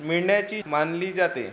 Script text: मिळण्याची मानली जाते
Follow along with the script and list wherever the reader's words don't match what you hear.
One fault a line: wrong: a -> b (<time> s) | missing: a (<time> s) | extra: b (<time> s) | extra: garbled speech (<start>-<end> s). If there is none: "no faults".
no faults